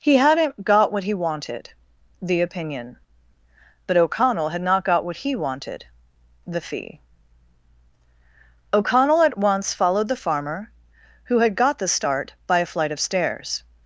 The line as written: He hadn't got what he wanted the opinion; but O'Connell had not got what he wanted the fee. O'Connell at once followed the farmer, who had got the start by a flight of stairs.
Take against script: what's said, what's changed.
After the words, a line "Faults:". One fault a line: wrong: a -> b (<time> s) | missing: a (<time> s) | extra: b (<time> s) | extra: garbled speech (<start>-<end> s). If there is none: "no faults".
He hadn't got what he wanted the opinion; but O'Connell had not got what he wanted the fee. O'Connell at once followed the farmer, who had got the start by a flight of stairs.
Faults:
no faults